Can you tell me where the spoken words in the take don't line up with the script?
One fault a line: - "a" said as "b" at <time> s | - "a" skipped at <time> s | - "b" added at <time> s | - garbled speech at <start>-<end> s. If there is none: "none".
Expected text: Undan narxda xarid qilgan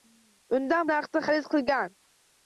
none